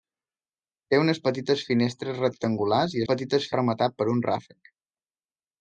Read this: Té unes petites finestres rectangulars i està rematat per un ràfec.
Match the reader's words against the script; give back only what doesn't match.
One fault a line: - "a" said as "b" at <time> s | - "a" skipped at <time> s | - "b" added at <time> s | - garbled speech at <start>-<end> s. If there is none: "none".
- "està" said as "petites" at 3.1 s